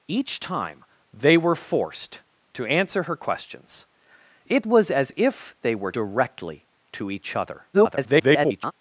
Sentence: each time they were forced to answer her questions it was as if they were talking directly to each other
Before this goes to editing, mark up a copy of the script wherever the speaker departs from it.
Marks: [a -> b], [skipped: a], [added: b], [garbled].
each time they were forced to answer her questions it was as if they were [skipped: talking] directly to each other [garbled]